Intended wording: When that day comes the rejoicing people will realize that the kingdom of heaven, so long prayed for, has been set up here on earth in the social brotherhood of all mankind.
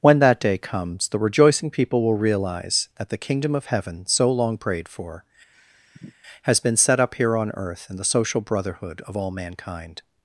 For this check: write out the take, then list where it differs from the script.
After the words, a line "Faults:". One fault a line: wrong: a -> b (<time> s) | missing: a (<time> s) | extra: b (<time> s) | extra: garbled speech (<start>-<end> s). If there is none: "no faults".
When that day comes the rejoicing people will realize that the kingdom of heaven, so long prayed for, has been set up here on earth in the social brotherhood of all mankind.
Faults:
no faults